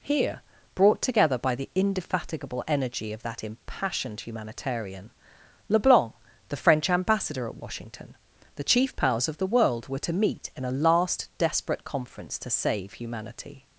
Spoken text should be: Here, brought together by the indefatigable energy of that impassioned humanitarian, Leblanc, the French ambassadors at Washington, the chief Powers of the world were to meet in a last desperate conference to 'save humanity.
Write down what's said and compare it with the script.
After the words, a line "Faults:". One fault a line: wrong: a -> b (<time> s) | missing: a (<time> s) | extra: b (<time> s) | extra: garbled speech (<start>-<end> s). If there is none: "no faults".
Here, brought together by the indefatigable energy of that impassioned humanitarian, Leblanc, the French ambassador at Washington, the chief Powers of the world were to meet in a last desperate conference to 'save humanity.
Faults:
wrong: ambassadors -> ambassador (6.9 s)